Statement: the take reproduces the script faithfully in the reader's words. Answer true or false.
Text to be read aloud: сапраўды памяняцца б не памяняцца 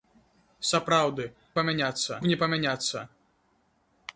true